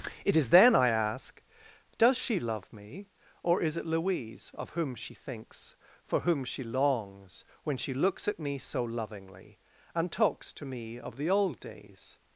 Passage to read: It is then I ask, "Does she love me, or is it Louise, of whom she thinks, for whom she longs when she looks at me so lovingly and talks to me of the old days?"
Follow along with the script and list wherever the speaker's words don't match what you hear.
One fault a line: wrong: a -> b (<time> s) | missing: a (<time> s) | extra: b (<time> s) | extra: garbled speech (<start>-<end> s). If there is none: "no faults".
no faults